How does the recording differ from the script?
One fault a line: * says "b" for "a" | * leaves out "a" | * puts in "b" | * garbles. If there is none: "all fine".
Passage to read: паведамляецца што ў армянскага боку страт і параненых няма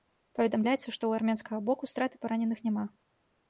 all fine